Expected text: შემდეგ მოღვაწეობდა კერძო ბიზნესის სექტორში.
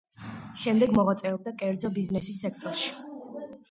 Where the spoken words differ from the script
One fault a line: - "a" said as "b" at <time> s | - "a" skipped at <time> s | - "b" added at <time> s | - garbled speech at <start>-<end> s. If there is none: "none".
none